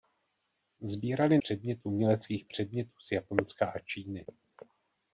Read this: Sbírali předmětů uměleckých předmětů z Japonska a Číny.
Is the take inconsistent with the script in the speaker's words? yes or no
no